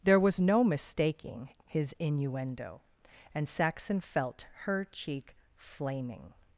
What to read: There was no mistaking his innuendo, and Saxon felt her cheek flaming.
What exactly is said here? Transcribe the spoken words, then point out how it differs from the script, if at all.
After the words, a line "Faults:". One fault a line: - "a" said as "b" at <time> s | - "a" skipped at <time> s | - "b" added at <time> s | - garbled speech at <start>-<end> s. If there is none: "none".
There was no mistaking his innuendo, and Saxon felt her cheek flaming.
Faults:
none